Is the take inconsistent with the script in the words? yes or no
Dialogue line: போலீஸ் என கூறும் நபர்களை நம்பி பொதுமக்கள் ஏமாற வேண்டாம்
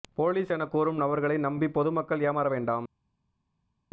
no